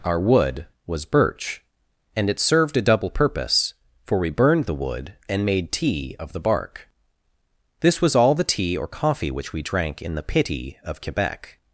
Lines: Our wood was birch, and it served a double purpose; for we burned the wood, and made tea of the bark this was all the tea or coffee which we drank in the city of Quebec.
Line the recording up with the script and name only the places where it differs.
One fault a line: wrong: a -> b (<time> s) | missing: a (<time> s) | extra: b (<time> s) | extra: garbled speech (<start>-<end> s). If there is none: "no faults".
wrong: city -> pity (10.2 s)